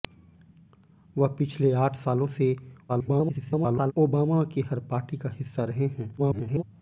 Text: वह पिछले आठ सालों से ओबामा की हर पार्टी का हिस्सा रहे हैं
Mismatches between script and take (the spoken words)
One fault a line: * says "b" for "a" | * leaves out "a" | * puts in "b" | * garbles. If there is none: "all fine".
* garbles
* garbles